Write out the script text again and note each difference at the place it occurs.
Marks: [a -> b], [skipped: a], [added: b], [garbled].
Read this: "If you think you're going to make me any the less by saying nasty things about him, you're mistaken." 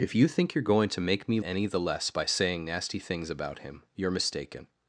"If you think you're going to make me any the less by saying nasty things about him, you're mistaken."